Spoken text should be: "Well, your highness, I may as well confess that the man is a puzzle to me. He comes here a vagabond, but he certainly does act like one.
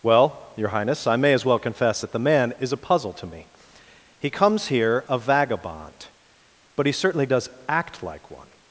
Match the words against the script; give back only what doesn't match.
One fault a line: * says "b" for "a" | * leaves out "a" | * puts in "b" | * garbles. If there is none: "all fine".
all fine